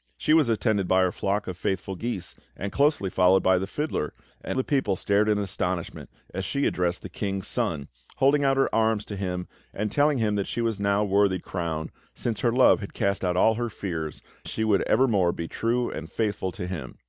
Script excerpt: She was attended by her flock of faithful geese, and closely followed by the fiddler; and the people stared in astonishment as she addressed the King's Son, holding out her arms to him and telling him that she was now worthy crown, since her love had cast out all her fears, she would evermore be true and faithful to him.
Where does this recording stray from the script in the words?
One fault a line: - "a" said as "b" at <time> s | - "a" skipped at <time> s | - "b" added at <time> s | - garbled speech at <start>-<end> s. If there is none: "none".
none